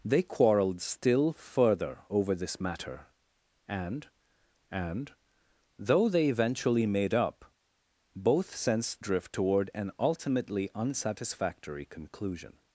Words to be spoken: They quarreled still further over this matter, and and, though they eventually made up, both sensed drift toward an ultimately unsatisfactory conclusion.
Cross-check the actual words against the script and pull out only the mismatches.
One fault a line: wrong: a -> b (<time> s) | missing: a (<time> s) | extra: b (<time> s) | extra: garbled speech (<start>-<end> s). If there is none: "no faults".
no faults